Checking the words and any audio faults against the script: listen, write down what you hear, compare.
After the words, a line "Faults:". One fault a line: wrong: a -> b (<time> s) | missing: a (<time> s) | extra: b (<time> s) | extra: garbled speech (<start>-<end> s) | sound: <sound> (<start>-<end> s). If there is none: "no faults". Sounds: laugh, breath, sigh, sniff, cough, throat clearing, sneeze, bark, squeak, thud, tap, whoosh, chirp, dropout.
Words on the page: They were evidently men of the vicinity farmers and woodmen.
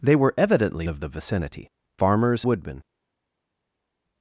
They were evidently of the vicinity farmers woodmen.
Faults:
missing: men (0.9 s)
missing: and (2.4 s)